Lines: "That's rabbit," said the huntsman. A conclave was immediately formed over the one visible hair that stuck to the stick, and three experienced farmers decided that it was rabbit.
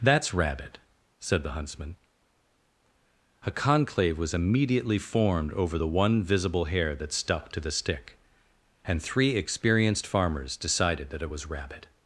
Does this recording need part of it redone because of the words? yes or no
no